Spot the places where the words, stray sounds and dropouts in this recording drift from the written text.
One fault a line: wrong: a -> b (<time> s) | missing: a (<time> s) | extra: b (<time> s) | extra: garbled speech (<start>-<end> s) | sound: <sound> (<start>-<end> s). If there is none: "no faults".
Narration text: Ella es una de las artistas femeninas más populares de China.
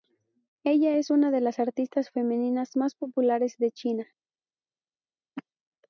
no faults